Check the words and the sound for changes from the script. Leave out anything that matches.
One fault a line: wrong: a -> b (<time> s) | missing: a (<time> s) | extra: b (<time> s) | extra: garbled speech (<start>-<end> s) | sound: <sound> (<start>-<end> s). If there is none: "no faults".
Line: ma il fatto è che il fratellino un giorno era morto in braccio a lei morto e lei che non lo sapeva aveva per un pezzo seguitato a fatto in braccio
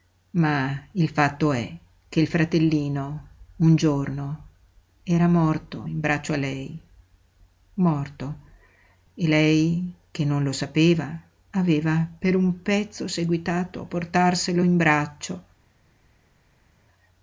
wrong: fatto -> portarselo (13.8 s)